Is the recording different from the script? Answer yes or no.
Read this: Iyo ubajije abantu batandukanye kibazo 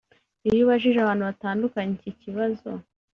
yes